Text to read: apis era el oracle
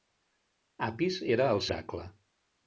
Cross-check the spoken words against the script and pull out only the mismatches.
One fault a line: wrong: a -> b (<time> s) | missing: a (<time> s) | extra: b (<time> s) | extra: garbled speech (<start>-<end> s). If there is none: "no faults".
no faults